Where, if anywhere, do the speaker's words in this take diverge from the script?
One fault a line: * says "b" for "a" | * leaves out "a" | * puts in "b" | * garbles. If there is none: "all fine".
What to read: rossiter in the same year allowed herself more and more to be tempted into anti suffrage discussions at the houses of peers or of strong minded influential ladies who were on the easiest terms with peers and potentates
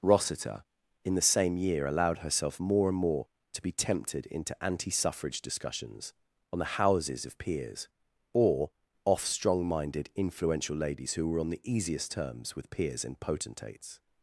* says "on" for "at"
* says "off" for "of"